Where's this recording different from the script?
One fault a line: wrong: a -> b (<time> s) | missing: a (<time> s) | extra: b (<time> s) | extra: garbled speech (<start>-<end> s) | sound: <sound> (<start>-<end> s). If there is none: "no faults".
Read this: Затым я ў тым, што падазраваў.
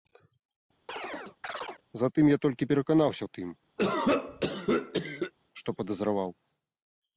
sound: chirp (0.9-1.8 s)
extra: толькі пераканаўся (2.5 s)
sound: cough (3.8-5.3 s)